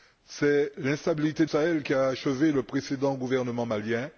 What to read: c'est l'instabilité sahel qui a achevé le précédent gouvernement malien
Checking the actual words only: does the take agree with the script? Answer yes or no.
yes